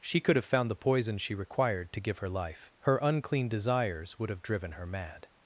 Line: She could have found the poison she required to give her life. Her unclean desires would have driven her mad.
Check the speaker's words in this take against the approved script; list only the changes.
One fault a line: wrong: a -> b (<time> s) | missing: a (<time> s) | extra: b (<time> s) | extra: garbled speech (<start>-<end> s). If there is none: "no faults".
no faults